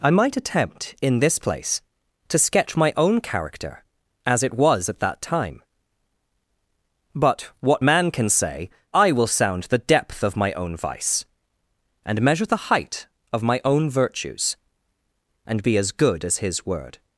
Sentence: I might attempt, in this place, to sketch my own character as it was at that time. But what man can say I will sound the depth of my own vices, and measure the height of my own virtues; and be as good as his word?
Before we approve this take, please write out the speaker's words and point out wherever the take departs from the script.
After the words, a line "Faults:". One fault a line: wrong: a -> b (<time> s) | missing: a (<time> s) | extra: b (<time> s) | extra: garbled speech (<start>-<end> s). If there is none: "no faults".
I might attempt, in this place, to sketch my own character as it was at that time. But what man can say I will sound the depth of my own vice, and measure the height of my own virtues; and be as good as his word?
Faults:
wrong: vices -> vice (10.8 s)